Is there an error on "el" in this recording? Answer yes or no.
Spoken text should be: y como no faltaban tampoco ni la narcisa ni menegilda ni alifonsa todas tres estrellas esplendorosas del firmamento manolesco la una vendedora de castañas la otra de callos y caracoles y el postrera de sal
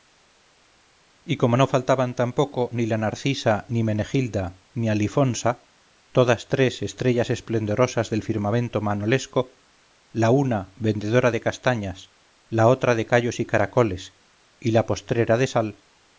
yes